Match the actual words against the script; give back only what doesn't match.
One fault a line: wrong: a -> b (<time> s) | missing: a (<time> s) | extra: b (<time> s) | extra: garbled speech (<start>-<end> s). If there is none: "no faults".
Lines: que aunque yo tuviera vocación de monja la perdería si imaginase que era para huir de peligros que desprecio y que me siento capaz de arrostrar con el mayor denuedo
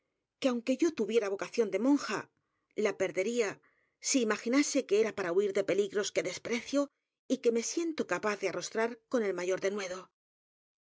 no faults